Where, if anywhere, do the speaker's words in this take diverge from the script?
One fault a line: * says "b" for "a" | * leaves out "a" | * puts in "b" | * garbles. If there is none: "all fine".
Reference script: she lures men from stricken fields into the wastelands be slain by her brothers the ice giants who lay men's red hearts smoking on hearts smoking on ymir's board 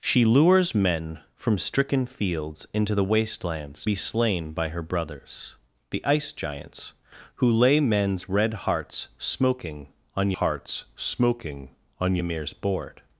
all fine